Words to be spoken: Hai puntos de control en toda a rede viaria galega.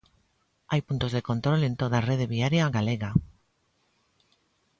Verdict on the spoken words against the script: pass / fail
pass